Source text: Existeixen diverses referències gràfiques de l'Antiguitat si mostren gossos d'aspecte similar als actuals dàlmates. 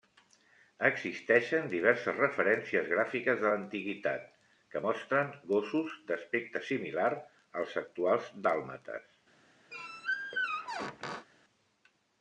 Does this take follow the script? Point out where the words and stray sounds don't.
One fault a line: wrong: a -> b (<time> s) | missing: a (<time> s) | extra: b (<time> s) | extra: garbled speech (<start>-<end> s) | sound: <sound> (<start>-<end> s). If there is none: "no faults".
wrong: si -> que (4.7 s)
sound: squeak (9.7-11.3 s)